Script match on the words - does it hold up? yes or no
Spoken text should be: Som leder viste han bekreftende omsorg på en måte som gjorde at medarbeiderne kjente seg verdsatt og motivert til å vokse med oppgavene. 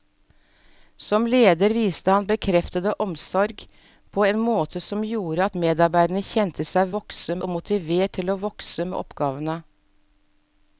no